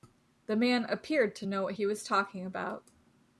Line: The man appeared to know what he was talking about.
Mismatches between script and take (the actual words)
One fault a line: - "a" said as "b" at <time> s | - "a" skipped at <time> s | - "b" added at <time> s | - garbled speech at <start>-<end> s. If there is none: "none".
none